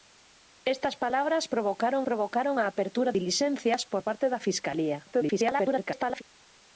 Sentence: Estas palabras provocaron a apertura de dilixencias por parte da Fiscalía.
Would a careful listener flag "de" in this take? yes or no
yes